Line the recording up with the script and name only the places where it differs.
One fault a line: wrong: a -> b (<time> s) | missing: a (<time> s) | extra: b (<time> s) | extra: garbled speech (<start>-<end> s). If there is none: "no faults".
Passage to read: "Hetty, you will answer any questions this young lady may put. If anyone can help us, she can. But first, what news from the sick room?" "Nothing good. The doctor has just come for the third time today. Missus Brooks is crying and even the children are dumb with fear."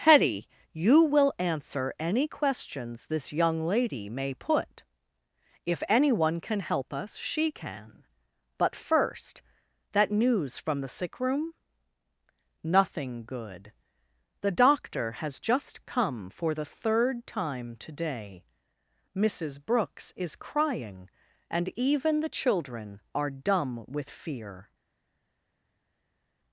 wrong: what -> that (9.9 s)